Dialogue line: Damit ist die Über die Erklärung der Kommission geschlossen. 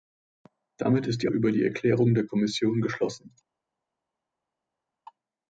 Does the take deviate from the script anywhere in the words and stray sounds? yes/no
no